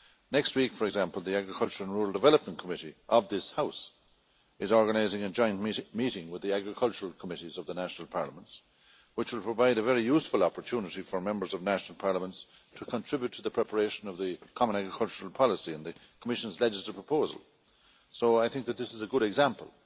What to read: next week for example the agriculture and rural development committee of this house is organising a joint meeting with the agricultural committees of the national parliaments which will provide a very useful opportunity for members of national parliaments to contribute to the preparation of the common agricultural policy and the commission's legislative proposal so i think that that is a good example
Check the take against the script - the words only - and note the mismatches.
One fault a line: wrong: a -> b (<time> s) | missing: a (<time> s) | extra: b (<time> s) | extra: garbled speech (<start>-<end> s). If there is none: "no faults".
wrong: that -> this (18.8 s)